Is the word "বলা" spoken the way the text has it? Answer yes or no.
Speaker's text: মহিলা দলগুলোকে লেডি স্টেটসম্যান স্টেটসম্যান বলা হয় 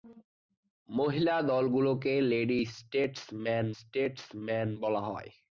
yes